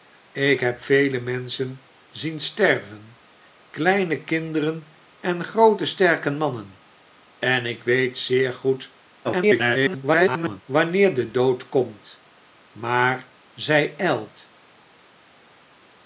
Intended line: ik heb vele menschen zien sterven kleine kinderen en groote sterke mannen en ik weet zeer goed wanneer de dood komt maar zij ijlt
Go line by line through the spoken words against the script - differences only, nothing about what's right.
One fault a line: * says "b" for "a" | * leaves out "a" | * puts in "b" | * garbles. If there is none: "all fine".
* garbles